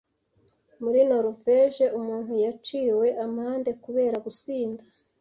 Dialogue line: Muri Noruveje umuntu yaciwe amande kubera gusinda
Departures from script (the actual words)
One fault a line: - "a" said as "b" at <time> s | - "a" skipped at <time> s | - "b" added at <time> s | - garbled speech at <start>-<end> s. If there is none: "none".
none